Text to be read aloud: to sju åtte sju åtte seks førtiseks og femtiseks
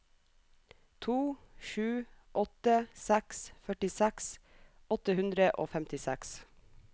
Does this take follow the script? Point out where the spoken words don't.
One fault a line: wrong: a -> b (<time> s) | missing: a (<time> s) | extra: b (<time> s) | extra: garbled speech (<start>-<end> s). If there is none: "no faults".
wrong: sju -> seks førtiseks (3.0 s)
wrong: seks førtiseks -> hundre (5.2 s)